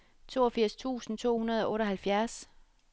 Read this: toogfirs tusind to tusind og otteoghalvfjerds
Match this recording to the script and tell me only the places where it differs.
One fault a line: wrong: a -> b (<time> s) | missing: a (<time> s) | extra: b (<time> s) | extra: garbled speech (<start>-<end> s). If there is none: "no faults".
wrong: tusind -> hundrede (1.3 s)